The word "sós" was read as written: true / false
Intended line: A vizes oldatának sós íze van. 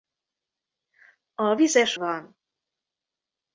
false